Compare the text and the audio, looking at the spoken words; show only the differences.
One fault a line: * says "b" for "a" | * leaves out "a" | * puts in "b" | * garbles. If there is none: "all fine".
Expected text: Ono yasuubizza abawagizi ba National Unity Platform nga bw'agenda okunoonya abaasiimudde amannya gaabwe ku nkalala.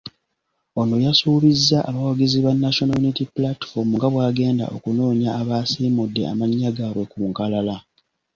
all fine